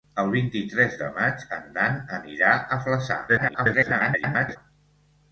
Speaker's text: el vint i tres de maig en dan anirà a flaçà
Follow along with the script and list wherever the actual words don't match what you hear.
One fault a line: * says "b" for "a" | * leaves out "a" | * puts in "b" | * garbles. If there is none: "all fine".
* garbles